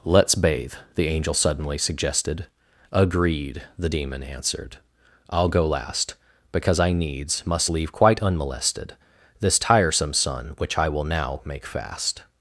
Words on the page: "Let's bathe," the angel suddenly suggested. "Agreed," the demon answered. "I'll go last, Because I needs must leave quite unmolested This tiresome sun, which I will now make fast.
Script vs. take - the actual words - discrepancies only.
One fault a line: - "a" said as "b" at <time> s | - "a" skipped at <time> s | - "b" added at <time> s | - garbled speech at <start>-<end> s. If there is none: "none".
none